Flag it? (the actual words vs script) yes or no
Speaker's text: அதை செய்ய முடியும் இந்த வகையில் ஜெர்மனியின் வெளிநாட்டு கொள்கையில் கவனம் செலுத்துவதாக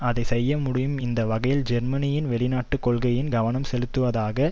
no